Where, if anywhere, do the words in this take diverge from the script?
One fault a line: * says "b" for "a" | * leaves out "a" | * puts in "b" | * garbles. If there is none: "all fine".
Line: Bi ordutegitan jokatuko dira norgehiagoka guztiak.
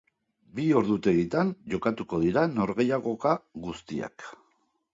all fine